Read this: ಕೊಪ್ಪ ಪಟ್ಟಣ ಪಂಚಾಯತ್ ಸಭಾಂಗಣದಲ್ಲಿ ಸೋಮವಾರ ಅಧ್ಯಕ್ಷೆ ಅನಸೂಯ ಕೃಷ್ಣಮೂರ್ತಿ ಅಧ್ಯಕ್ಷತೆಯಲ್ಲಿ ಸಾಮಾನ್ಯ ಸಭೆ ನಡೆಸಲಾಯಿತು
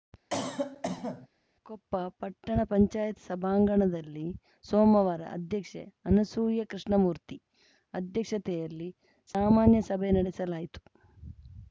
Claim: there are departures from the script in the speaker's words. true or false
false